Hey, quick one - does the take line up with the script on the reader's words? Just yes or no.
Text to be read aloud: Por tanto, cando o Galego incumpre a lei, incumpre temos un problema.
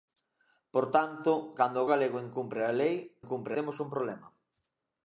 yes